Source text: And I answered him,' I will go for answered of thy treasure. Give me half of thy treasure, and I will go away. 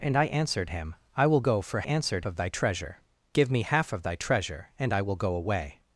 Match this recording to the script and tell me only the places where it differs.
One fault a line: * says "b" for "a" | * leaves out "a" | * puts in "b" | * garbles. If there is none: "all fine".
all fine